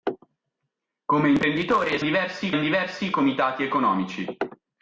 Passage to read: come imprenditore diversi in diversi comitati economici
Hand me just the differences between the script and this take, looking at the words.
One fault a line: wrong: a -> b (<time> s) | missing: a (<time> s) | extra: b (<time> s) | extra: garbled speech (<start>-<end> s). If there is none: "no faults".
no faults